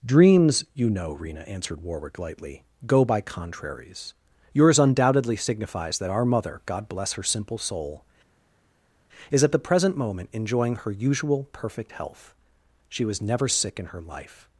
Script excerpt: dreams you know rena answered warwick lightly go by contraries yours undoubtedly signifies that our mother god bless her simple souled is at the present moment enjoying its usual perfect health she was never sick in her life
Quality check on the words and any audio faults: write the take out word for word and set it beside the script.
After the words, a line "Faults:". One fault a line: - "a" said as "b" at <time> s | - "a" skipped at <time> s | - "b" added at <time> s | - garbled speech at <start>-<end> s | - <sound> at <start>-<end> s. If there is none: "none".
dreams you know rena answered warwick lightly go by contraries yours undoubtedly signifies that our mother god bless her simple soul is at the present moment enjoying her usual perfect health she was never sick in her life
Faults:
- "souled" said as "soul" at 7.6 s
- "its" said as "her" at 10.8 s